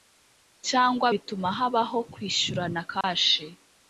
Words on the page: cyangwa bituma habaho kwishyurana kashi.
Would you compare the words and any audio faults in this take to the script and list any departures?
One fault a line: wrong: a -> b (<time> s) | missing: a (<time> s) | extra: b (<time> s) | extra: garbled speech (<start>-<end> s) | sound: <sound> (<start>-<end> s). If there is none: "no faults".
sound: dropout (3.0-3.0 s)